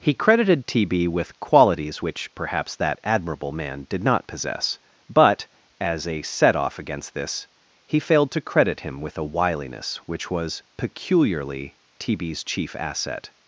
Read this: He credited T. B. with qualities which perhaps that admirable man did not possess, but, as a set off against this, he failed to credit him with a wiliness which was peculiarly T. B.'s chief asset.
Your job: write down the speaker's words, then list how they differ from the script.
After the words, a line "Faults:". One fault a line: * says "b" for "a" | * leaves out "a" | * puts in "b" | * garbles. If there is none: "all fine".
He credited T. B. with qualities which perhaps that admirable man did not possess, but, as a set off against this, he failed to credit him with a wiliness which was peculiarly T. B.'s chief asset.
Faults:
all fine